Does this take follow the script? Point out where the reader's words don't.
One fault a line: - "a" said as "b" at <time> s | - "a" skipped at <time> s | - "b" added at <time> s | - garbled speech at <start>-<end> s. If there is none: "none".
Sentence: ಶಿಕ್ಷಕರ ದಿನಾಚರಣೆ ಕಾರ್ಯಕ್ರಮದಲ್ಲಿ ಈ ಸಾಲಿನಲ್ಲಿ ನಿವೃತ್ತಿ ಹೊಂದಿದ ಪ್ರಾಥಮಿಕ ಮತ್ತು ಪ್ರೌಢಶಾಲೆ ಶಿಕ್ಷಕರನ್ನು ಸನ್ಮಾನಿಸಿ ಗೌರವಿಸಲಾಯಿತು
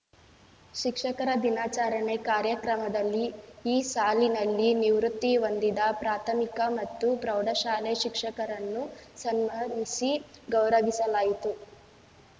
none